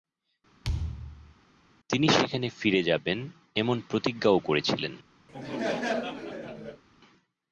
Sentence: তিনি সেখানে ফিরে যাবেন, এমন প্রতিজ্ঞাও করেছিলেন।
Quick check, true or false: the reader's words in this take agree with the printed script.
true